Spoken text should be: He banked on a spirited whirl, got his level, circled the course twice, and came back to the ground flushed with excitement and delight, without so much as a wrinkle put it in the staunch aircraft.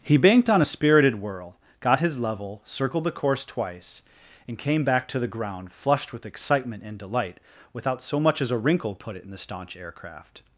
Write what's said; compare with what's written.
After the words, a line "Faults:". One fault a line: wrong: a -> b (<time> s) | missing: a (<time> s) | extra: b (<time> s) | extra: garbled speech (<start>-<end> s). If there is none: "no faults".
He banked on a spirited whirl, got his level, circled the course twice, and came back to the ground flushed with excitement and delight, without so much as a wrinkle put it in the staunch aircraft.
Faults:
no faults